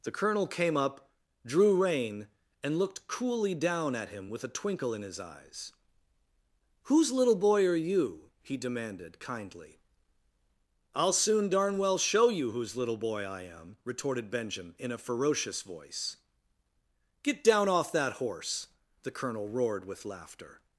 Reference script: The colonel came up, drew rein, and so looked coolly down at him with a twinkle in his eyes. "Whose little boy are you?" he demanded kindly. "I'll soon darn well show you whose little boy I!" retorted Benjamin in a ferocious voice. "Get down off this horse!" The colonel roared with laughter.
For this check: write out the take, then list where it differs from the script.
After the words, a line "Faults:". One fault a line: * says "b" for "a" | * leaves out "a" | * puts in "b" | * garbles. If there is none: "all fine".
The colonel came up, drew rein, and looked coolly down at him with a twinkle in his eyes. "Whose little boy are you?" he demanded kindly. "I'll soon darn well show you whose little boy I am!" retorted Benjamin in a ferocious voice. "Get down off that horse!" The colonel roared with laughter.
Faults:
* leaves out "so"
* puts in "am"
* says "that" for "this"